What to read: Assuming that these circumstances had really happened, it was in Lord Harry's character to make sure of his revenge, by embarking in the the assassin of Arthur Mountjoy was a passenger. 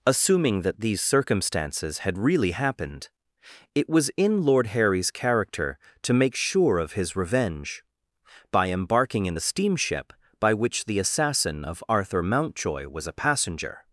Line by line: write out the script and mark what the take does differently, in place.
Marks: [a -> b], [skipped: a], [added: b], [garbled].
Assuming that these circumstances had really happened, it was in Lord Harry's character to make sure of his revenge, by embarking in the [added: steamship by which] the assassin of Arthur Mountjoy was a passenger.